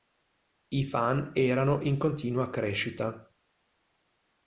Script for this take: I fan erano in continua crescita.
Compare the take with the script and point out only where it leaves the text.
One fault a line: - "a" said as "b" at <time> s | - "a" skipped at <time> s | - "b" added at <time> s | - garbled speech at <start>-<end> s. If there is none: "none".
none